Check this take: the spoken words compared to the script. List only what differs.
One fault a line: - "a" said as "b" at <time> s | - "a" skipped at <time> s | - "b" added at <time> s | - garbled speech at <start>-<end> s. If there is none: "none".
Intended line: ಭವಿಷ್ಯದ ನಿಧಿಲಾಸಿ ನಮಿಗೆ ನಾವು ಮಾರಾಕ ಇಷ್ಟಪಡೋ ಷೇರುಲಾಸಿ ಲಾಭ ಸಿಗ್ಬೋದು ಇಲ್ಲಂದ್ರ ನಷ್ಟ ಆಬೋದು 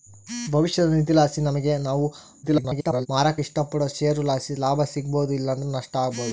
- garbled speech at 2.4-3.1 s